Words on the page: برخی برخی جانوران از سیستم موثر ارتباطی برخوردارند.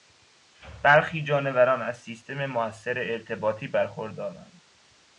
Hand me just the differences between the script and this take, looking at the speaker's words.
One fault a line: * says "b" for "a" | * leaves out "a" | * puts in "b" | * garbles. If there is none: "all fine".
* leaves out "برخی"